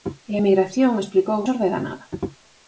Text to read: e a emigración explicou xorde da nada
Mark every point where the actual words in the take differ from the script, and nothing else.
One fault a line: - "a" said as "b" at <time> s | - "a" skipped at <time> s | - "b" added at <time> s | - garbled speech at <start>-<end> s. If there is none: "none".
none